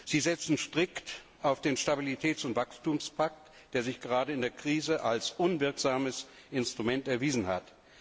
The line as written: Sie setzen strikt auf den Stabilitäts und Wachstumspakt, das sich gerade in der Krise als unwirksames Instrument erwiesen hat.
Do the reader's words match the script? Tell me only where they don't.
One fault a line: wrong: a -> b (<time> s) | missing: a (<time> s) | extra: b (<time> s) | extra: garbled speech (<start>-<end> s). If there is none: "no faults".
wrong: das -> der (3.7 s)